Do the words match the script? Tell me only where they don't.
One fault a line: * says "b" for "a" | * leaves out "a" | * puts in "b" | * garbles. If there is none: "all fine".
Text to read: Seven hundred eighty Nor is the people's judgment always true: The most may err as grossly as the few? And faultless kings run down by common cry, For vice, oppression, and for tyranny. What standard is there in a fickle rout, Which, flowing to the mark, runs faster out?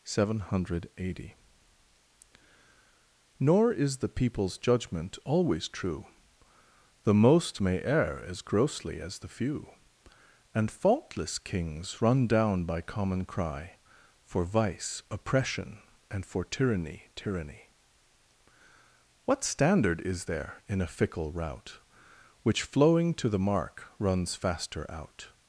* puts in "tyranny"